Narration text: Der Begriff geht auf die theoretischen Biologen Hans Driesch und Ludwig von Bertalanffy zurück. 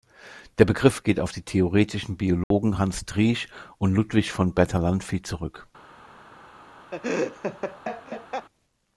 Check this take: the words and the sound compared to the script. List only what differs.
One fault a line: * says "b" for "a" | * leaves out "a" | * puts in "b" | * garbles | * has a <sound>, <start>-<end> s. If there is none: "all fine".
* has a dropout, 2.4-2.5 s
* has a laugh, 6.9-8.5 s